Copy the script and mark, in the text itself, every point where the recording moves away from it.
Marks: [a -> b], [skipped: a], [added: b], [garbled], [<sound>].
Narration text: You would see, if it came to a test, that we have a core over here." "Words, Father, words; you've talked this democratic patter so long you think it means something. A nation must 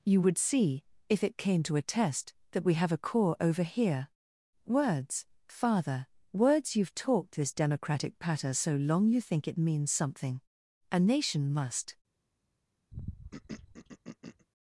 You would see, if it came to a test, that we have a core over here." "Words, Father, words; you've talked this democratic patter so long you think it means something. A nation must [throat clearing]